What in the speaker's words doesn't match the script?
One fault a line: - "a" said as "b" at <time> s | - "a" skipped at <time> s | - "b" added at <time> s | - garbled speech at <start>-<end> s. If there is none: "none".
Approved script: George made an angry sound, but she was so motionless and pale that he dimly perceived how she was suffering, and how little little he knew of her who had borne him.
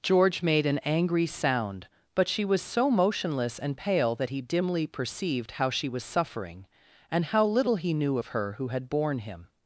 - "little" skipped at 7.8 s